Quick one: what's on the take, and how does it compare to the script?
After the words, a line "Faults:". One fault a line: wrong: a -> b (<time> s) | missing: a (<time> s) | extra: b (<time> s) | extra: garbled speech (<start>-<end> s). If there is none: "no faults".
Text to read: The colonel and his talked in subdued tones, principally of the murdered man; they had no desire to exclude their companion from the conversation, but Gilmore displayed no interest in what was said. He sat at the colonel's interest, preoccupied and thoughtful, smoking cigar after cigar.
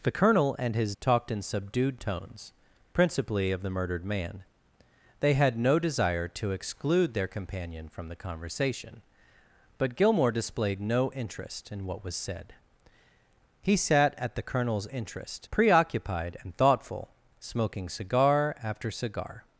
The colonel and his talked in subdued tones, principally of the murdered man; they had no desire to exclude their companion from the conversation, but Gilmore displayed no interest in what was said. He sat at the colonel's interest, preoccupied and thoughtful, smoking cigar after cigar.
Faults:
no faults